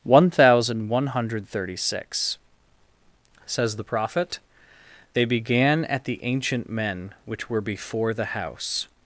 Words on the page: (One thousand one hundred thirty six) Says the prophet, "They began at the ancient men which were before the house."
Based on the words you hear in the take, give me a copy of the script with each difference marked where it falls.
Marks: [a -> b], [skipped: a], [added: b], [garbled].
(One thousand one hundred thirty six) Says the prophet, "They began at the ancient men which were before the house."